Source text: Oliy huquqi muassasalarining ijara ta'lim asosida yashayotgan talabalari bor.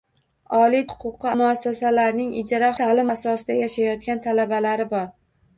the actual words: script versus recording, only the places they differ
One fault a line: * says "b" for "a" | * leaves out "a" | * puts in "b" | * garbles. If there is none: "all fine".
all fine